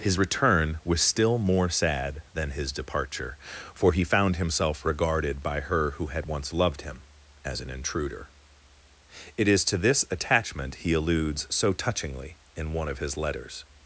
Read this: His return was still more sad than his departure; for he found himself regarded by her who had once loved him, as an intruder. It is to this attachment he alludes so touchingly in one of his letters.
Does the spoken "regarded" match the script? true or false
true